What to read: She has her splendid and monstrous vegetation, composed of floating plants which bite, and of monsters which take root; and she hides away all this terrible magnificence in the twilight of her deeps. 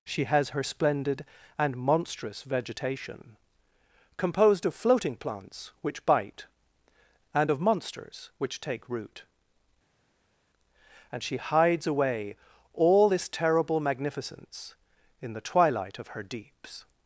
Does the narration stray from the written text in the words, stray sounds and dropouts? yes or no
no